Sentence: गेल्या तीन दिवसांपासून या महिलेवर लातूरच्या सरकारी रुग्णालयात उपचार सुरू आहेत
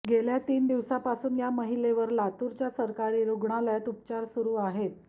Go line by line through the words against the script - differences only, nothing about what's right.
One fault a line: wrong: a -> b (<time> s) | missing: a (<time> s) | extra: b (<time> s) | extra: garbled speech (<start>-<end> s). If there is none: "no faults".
no faults